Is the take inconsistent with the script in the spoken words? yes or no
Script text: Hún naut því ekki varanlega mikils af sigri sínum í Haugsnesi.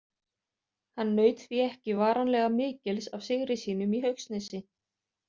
yes